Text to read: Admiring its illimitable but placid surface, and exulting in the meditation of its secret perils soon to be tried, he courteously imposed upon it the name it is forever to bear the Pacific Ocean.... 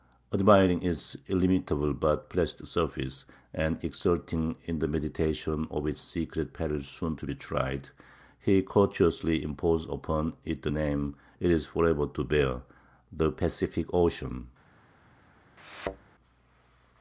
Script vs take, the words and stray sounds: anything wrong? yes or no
yes